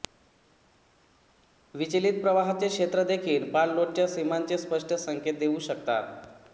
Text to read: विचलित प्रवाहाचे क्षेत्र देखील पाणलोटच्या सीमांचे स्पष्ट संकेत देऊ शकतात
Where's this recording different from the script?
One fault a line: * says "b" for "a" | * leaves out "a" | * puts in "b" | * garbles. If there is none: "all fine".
all fine